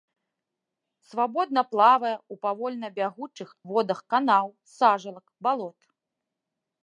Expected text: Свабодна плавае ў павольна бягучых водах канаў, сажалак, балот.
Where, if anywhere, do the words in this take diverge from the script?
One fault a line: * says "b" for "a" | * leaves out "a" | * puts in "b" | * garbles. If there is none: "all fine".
all fine